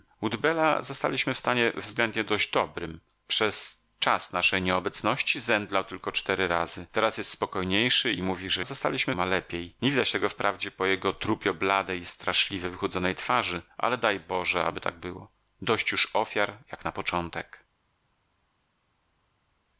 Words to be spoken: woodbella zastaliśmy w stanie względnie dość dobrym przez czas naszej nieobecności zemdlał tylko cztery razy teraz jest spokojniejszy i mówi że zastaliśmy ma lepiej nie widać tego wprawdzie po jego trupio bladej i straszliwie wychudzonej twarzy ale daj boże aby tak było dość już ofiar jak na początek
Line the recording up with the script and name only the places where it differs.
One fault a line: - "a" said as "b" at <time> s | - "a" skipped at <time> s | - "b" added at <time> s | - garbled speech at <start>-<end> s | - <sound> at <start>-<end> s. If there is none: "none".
none